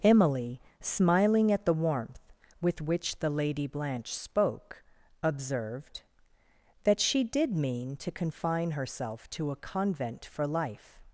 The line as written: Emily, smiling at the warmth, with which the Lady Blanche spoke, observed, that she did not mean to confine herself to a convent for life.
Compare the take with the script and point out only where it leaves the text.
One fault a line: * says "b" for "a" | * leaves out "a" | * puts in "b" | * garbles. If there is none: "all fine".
* leaves out "not"